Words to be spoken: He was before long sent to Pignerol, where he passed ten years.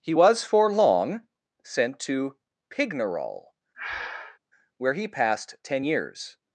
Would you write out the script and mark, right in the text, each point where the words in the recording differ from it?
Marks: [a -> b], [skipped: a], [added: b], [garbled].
He was [before -> for] long sent to Pignerol, where he passed ten years.